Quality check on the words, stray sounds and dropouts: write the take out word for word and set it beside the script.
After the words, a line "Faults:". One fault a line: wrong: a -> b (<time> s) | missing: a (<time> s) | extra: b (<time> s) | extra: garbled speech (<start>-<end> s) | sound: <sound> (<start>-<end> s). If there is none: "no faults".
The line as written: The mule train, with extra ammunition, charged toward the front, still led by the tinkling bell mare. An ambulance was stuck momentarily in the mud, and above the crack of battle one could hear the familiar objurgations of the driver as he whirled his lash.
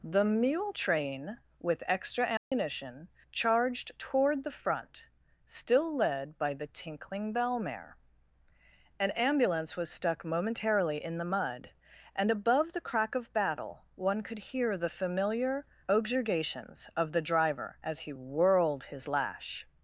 The mule train, with extra ammunition, charged toward the front, still led by the tinkling bell mare. An ambulance was stuck momentarily in the mud, and above the crack of battle one could hear the familiar objurgations of the driver as he whirled his lash.
Faults:
sound: dropout (2.4-2.5 s)